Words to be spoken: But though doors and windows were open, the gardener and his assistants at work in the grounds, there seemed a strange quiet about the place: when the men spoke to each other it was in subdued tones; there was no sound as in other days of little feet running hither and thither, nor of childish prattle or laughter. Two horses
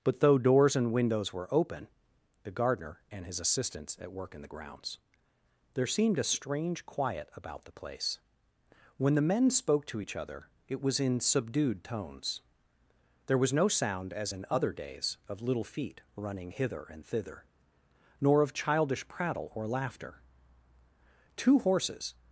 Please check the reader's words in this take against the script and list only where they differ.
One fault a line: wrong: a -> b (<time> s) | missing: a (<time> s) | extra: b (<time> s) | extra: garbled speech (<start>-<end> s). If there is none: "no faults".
no faults